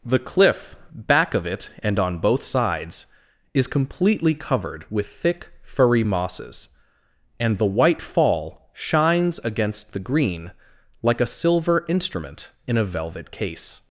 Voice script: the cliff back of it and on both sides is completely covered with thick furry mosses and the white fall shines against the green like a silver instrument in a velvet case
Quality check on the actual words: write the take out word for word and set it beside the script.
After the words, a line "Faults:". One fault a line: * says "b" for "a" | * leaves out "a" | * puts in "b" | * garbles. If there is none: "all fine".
the cliff back of it and on both sides is completely covered with thick furry mosses and the white fall shines against the green like a silver instrument in a velvet case
Faults:
all fine